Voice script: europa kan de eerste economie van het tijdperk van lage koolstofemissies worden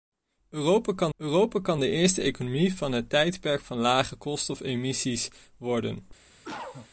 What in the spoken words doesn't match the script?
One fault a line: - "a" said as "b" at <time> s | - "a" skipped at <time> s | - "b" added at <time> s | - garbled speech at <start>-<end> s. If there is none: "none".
- "europa kan" added at 1.2 s